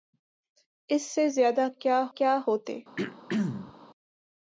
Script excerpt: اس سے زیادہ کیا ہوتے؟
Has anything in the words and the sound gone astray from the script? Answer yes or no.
yes